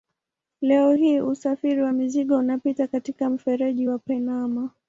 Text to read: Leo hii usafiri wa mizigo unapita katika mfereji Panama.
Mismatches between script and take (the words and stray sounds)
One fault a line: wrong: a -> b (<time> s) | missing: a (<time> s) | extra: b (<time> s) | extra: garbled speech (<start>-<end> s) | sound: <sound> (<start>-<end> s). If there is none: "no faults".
extra: wa (3.9 s)